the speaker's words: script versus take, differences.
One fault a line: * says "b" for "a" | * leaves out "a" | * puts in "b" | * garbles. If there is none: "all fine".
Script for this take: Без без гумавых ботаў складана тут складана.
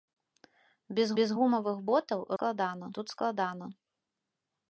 all fine